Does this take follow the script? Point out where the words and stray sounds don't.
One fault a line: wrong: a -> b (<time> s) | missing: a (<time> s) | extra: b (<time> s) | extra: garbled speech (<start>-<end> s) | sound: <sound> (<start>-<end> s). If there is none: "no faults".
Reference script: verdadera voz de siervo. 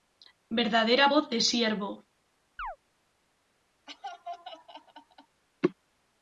sound: chirp (2.6-2.8 s)
sound: laugh (3.9-5.4 s)